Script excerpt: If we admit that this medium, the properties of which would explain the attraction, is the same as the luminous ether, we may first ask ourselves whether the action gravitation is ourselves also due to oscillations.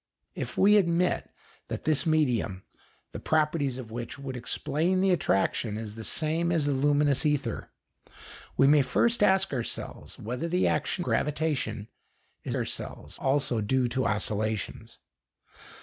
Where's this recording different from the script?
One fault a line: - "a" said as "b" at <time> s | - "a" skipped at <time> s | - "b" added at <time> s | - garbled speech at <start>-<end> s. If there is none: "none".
none